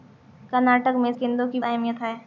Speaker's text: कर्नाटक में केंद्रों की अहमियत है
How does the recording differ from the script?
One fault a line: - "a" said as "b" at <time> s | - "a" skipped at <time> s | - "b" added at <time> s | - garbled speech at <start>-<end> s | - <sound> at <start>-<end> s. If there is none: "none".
none